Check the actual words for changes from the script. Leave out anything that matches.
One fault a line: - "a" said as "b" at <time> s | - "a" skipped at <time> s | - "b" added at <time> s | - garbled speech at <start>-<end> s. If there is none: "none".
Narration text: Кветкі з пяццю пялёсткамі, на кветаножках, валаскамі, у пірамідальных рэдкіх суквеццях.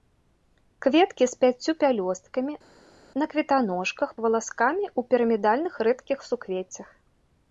none